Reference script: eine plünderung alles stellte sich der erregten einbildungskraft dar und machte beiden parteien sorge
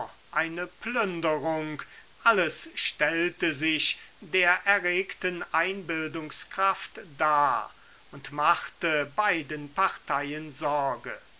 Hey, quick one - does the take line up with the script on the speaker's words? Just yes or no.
yes